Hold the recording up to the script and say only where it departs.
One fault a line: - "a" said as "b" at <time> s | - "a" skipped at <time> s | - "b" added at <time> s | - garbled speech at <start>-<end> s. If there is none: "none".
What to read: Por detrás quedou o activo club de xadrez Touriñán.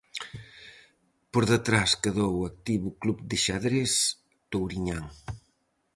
none